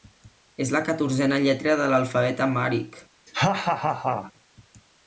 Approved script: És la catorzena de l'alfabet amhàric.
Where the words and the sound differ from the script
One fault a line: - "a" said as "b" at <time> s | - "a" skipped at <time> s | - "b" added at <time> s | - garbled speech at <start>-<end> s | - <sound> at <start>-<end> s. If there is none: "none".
- "lletra" added at 1.4 s
- laugh at 3.3-4.3 s